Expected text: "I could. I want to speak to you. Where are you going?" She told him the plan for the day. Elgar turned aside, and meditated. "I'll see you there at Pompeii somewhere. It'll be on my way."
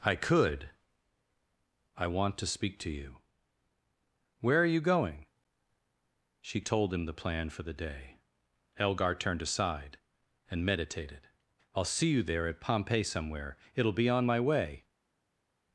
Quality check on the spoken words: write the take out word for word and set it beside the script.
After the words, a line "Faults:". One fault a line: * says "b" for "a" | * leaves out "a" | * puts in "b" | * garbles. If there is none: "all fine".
"I could. I want to speak to you. Where are you going?" She told him the plan for the day. Elgar turned aside, and meditated. "I'll see you there at Pompeii somewhere. It'll be on my way."
Faults:
all fine